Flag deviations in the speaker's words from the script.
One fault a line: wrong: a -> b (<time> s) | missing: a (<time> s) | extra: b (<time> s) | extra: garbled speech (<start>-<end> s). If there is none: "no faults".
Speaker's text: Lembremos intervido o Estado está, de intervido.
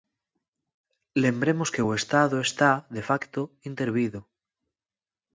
wrong: intervido -> que (1.7 s)
extra: facto (3.1 s)